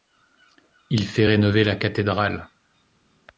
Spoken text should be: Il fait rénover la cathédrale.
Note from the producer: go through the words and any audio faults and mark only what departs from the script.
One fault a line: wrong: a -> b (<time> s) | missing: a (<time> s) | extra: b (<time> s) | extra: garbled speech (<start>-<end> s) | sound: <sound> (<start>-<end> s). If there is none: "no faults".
no faults